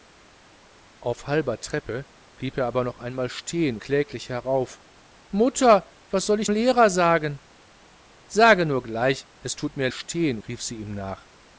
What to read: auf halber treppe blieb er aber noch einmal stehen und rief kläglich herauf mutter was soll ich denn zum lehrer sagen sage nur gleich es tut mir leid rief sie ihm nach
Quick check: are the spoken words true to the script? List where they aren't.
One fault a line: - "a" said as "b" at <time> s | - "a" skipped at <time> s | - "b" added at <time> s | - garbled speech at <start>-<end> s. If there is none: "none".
- "und rief" skipped at 3.8 s
- "denn zum" skipped at 6.5 s
- "leid" said as "stehen" at 9.9 s